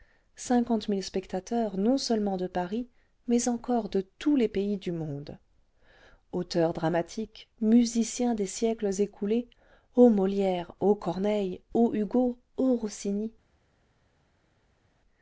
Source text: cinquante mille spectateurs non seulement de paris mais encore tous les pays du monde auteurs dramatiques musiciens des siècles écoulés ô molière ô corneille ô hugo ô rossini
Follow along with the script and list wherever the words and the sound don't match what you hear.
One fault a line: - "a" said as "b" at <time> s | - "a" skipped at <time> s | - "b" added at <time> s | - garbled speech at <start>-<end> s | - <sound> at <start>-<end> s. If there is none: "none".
- "de" added at 3.9 s